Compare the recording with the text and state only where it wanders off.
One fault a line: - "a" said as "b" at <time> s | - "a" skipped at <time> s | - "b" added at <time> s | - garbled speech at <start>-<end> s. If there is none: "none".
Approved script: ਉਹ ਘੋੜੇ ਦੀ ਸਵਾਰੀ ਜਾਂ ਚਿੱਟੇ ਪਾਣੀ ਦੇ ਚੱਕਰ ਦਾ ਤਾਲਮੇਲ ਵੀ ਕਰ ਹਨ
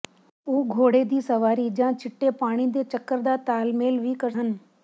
none